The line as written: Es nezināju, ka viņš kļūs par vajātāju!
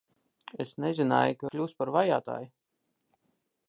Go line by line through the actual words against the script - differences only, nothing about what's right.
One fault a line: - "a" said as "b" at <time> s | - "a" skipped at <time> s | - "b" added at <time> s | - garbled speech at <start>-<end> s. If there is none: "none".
- "viņš" skipped at 1.5 s